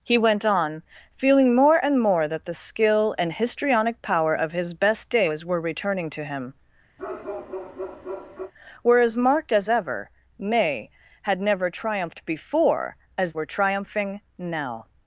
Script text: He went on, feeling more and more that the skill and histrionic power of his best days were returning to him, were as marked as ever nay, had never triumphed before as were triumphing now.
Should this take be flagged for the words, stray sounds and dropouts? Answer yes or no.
yes